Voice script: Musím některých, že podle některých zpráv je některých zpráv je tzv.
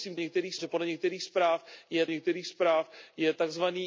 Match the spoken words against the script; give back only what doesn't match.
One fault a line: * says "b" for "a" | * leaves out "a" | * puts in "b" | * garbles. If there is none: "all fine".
all fine